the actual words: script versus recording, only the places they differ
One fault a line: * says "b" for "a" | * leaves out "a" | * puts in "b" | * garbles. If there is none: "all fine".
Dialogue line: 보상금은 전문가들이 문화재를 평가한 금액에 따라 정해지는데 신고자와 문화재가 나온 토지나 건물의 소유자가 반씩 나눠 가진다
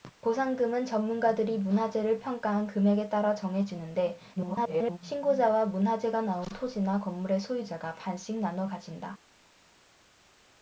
* garbles